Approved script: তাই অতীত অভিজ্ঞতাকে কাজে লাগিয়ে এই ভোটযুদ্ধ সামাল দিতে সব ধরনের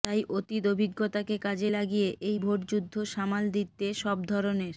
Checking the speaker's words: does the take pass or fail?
pass